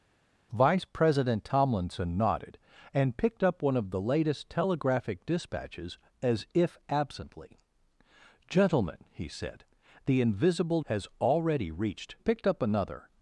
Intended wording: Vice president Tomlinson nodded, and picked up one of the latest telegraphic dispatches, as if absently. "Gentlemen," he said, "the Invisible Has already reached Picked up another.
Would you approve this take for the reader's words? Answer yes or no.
yes